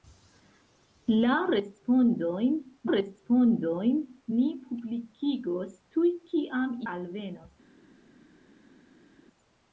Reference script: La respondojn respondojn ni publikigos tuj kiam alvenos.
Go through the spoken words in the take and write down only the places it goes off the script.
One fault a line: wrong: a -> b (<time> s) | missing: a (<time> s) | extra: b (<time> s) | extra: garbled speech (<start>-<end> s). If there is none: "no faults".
no faults